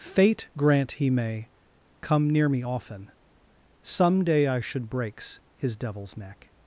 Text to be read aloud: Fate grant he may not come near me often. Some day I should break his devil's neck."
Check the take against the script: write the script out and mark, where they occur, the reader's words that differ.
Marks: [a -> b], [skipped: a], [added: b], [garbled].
Fate grant he may [skipped: not] come near me often. Some day I should [break -> breaks] his devil's neck."